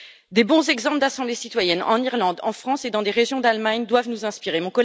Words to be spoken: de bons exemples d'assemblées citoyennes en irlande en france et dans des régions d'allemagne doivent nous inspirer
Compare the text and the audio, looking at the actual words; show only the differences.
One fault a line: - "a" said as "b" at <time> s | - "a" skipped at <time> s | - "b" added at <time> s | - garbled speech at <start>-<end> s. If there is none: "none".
none